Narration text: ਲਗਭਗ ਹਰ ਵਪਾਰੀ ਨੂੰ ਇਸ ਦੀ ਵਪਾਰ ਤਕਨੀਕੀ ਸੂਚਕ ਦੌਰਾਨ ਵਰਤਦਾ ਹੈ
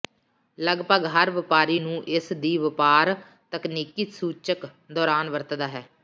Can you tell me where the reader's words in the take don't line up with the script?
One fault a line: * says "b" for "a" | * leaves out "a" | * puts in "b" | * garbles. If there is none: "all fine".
all fine